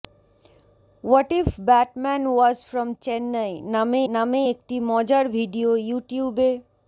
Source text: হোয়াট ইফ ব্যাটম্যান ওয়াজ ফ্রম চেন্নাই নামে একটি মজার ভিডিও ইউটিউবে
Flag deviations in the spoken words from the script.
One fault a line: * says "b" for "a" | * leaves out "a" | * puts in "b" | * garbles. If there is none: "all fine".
* puts in "নামে"